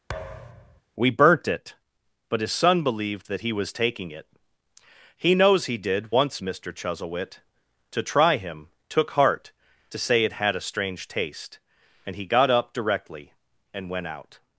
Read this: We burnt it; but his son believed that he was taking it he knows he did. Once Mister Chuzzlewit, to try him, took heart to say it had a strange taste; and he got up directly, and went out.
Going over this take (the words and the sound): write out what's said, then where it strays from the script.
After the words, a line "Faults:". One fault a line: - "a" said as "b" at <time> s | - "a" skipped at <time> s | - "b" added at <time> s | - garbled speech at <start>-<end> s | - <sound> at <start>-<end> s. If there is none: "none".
We burnt it; but his son believed that he was taking it he knows he did. Once Mister Chuzzlewit, to try him, took heart to say it had a strange taste; and he got up directly, and went out.
Faults:
- thud at 0.1-0.8 s